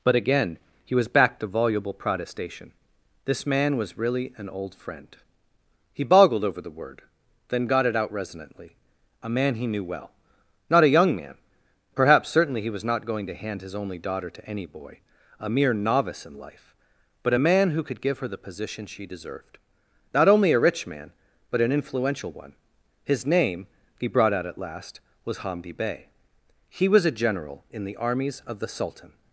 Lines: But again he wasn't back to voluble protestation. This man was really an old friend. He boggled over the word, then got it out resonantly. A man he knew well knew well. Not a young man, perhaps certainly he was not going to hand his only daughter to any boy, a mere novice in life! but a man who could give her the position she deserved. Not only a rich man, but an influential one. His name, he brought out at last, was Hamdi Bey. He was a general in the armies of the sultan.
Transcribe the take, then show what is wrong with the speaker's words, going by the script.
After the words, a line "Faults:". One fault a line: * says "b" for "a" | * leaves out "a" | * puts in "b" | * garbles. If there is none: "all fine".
But again he was back to voluble protestation. This man was really an old friend. He boggled over the word, then got it out resonantly. A man he knew well. Not a young man, perhaps certainly he was not going to hand his only daughter to any boy, a mere novice in life! but a man who could give her the position she deserved. Not only a rich man, but an influential one. His name, he brought out at last, was Hamdi Bey. He was a general in the armies of the sultan.
Faults:
* says "was" for "wasn't"
* leaves out "knew well"